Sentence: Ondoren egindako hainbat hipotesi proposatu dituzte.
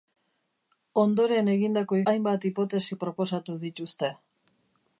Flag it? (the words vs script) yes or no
no